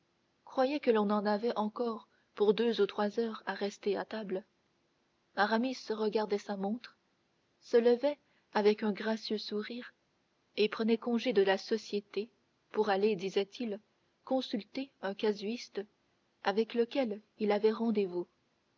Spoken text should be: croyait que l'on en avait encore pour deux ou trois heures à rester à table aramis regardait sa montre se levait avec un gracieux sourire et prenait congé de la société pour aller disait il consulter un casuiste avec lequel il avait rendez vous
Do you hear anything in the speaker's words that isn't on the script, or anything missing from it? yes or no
no